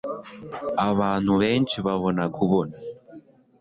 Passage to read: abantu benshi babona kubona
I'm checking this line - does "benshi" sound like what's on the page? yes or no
yes